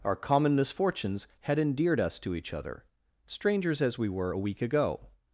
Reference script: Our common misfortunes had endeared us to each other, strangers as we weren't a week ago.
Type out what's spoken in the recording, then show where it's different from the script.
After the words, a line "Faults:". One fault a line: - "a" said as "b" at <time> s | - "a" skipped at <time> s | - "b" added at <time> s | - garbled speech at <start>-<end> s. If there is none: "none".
Our common misfortunes had endeared us to each other, strangers as we were a week ago.
Faults:
- "weren't" said as "were" at 4.1 s